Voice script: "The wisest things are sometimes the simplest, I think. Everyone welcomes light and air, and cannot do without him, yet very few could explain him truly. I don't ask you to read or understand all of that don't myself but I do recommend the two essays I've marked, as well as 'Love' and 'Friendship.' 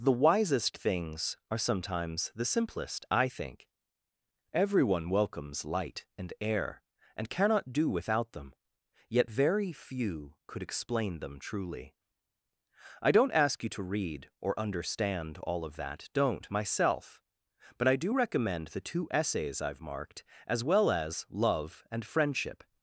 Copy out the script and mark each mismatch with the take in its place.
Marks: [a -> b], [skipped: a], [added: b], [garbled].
"The wisest things are sometimes the simplest, I think. Everyone welcomes light and air, and cannot do without [him, -> them] yet very few could explain [him -> them] truly. I don't ask you to read or understand all of that don't myself but I do recommend the two essays I've marked, as well as 'Love' and 'Friendship.'